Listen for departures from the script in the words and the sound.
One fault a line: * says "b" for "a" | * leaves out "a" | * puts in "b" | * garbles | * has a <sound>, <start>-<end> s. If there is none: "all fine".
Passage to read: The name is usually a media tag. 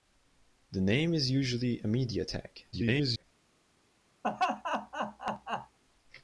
* garbles
* has a laugh, 4.2-5.8 s